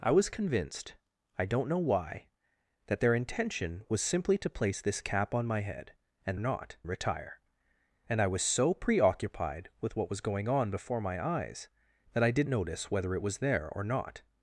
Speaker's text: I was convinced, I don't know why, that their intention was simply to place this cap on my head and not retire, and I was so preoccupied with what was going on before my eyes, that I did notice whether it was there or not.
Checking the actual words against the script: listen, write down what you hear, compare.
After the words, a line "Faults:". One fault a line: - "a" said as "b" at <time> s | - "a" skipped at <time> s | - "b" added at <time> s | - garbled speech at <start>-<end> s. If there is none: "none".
I was convinced, I don't know why, that their intention was simply to place this cap on my head and not retire, and I was so preoccupied with what was going on before my eyes, that I did notice whether it was there or not.
Faults:
none